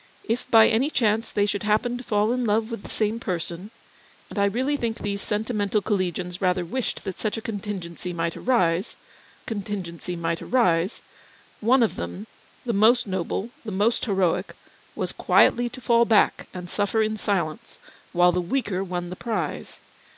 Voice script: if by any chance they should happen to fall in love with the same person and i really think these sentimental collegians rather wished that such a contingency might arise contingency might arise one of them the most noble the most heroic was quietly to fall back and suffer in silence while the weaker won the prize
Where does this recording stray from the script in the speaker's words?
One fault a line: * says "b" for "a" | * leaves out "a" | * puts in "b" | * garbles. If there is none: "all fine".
all fine